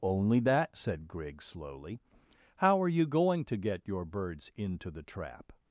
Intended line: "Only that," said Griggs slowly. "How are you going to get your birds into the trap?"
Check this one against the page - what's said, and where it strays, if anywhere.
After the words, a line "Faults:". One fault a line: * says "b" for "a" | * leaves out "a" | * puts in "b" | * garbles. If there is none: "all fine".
"Only that," said Griggs slowly. "How are you going to get your birds into the trap?"
Faults:
all fine